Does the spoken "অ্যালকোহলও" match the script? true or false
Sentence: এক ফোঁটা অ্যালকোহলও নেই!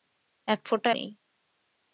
false